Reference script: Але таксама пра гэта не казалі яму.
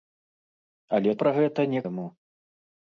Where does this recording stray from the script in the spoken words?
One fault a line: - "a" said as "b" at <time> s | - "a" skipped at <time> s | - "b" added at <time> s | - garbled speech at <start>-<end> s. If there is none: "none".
- "таксама" skipped at 1.1 s
- "казалі" skipped at 1.8 s